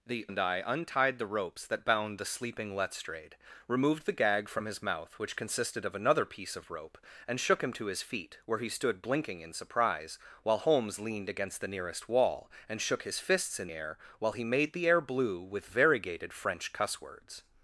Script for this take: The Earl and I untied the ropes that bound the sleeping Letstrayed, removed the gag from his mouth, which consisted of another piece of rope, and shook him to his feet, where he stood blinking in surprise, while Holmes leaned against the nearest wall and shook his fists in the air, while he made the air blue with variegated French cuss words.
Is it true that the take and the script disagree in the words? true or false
true